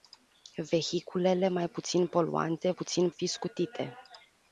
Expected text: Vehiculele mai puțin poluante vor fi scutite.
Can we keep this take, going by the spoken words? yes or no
no